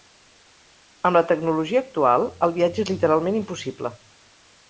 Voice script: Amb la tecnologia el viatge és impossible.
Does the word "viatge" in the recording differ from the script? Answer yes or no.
no